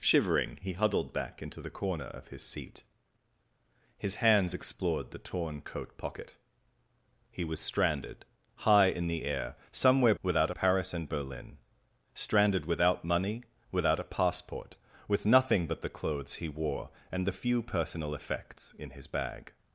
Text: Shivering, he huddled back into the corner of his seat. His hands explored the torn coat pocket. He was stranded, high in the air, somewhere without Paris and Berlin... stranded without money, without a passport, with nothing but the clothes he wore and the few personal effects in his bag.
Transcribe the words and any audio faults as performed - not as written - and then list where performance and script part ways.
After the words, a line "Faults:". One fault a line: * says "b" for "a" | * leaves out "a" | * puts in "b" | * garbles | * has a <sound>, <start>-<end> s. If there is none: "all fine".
Shivering, he huddled back into the corner of his seat. His hands explored the torn coat pocket. He was stranded, high in the air, somewhere without Paris and Berlin... stranded without money, without a passport, with nothing but the clothes he wore and the few personal effects in his bag.
Faults:
all fine